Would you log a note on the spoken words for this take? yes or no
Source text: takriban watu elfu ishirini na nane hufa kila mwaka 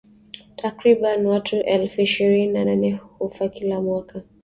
no